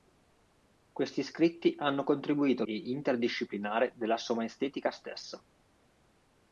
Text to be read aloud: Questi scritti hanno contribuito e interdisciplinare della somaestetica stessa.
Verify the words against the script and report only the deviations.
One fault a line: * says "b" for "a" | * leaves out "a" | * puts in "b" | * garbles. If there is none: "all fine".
all fine